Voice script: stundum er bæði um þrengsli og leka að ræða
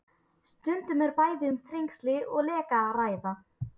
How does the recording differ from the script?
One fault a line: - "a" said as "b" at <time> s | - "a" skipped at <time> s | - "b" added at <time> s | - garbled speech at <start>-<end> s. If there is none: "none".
none